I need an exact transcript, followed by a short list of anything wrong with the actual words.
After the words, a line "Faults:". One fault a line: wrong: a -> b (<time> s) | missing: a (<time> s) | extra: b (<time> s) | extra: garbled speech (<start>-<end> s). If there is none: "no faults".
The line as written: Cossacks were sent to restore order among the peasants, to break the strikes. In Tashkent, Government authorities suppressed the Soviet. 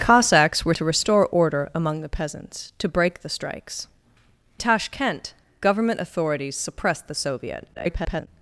Cossacks were to restore order among the peasants, to break the strikes. Tashkent, Government authorities suppressed the Soviet. [garbled]
Faults:
missing: sent (0.7 s)
missing: In (3.9 s)
extra: garbled speech (7.7-8.3 s)